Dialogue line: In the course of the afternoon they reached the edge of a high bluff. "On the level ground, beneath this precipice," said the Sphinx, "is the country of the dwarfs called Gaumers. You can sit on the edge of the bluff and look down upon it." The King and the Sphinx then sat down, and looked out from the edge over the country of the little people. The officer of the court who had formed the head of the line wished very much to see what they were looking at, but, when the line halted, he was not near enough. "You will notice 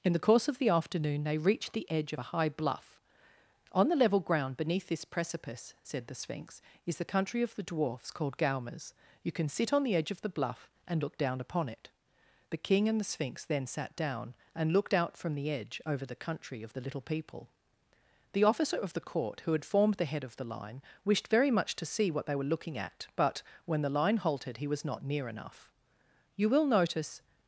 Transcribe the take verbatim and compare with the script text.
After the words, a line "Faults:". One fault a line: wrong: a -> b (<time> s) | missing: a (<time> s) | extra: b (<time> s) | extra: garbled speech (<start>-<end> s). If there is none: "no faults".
In the course of the afternoon they reached the edge of a high bluff. "On the level ground, beneath this precipice," said the Sphinx, "is the country of the dwarfs called Gaumers. You can sit on the edge of the bluff and look down upon it." The King and the Sphinx then sat down, and looked out from the edge over the country of the little people. The officer of the court who had formed the head of the line wished very much to see what they were looking at, but, when the line halted, he was not near enough. "You will notice
Faults:
no faults